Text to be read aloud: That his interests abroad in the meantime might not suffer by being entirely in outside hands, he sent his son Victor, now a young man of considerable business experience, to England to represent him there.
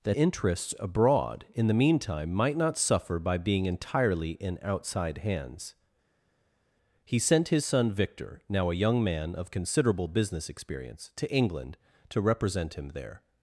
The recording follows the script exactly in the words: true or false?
false